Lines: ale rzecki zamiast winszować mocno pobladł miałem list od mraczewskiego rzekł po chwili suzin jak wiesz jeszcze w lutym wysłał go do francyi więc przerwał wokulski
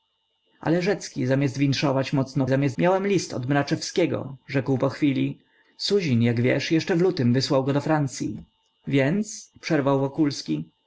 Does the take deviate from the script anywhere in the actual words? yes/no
yes